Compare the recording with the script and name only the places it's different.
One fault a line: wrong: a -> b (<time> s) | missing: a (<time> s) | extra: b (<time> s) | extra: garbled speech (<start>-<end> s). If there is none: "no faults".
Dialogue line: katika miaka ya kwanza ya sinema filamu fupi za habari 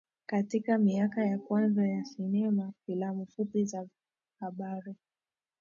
no faults